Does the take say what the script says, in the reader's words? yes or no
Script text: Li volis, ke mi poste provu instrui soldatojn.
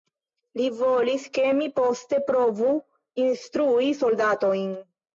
yes